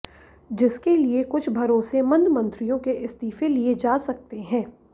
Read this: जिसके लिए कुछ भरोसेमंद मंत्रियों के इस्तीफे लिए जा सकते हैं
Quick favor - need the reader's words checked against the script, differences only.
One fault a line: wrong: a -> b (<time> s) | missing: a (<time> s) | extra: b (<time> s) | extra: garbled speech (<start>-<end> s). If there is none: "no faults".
no faults